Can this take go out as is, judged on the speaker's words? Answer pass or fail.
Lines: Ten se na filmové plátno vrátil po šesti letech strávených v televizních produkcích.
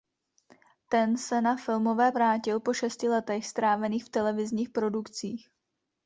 fail